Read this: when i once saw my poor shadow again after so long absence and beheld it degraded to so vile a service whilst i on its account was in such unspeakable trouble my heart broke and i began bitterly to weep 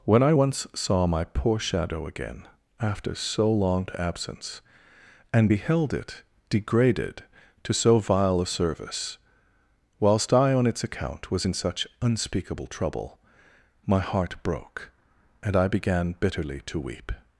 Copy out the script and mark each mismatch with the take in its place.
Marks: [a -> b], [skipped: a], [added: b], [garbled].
when i once saw my poor shadow again after so long absence and beheld it degraded to so vile a service whilst i on its account was in such unspeakable trouble my heart broke and i began bitterly to weep